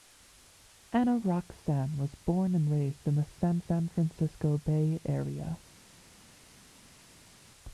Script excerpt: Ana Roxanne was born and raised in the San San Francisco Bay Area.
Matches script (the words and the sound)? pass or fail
pass